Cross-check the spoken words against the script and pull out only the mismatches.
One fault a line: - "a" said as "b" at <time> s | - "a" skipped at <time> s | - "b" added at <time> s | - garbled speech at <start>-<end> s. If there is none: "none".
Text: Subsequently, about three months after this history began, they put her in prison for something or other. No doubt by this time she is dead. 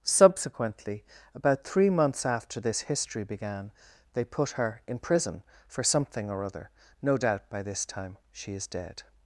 none